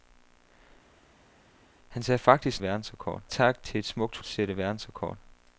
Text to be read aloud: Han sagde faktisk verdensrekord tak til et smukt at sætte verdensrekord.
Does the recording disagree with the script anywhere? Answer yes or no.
no